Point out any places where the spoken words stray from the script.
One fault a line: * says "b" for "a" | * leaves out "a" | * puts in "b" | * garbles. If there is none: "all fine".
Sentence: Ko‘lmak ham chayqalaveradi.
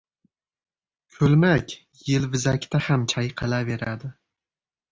* puts in "yelvizakda"